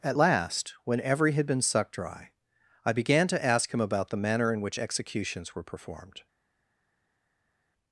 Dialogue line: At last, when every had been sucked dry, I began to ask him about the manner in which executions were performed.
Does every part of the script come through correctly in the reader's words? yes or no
yes